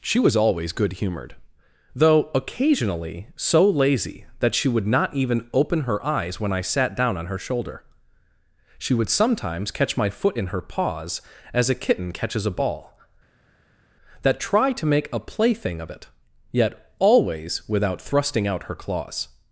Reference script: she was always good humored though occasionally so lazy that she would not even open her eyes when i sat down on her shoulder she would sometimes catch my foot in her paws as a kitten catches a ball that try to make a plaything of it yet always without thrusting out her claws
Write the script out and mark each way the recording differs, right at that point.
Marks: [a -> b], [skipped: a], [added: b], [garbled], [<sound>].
she was always good humored though occasionally so lazy that she would not even open her eyes when i sat down on her shoulder she would sometimes catch my foot in her paws as a kitten catches a ball that try to make a plaything of it yet always without thrusting out her claws